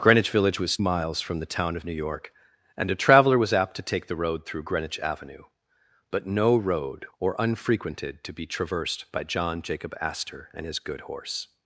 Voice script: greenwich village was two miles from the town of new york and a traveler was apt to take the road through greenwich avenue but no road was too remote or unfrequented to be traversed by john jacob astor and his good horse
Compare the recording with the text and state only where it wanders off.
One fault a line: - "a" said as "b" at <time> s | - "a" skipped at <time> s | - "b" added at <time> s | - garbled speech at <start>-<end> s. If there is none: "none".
- "two" skipped at 0.8 s
- "was too remote" skipped at 7.1 s